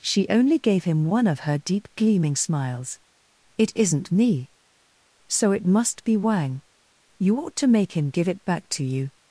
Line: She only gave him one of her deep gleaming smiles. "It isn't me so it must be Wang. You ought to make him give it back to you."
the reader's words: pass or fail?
pass